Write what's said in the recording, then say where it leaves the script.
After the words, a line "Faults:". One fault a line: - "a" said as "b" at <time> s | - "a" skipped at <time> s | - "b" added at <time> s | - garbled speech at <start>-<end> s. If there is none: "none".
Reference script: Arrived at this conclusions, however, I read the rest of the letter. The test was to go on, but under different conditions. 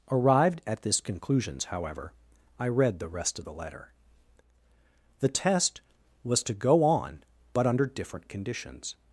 Arrived at this conclusions, however, I read the rest of the letter. The test was to go on, but under different conditions.
Faults:
none